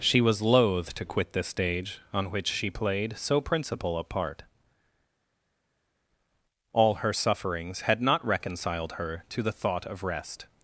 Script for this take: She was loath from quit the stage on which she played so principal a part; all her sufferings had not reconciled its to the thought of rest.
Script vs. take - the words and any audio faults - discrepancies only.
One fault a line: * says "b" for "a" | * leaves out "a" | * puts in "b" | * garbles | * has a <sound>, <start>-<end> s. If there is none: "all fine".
* says "to" for "from"
* says "her" for "its"